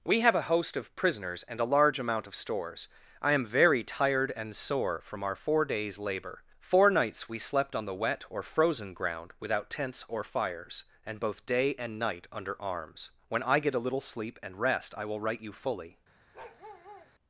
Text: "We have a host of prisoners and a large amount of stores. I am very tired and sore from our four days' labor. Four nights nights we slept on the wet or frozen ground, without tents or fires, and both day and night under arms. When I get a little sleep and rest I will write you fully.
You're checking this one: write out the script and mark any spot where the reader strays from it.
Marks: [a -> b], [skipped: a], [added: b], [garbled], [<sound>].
"We have a host of prisoners and a large amount of stores. I am very tired and sore from our four days' labor. Four nights [skipped: nights] we slept on the wet or frozen ground, without tents or fires, and both day and night under arms. When I get a little sleep and rest I will write you fully. [bark]